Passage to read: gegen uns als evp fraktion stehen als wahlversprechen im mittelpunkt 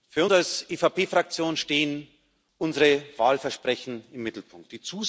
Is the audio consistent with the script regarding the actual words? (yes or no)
no